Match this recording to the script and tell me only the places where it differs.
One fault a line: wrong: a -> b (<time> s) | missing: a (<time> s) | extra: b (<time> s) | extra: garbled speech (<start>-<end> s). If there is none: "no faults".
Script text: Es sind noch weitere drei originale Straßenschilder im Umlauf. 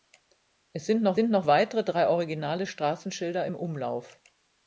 extra: sind noch (1.2 s)